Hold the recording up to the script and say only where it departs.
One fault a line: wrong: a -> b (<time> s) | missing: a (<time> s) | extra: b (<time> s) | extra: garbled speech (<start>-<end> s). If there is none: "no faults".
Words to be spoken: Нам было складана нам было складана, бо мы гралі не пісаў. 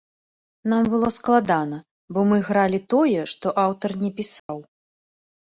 wrong: нам было складана бо мы гралі -> бо мы гралі тое што аўтар (2.1 s)